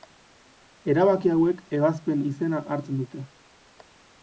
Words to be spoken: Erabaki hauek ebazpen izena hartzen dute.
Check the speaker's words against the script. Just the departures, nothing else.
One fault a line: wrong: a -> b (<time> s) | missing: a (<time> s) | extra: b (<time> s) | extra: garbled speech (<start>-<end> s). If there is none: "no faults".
no faults